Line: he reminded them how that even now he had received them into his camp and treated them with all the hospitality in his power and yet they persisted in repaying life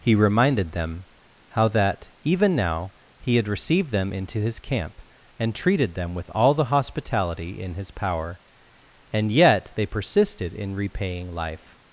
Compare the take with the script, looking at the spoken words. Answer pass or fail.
pass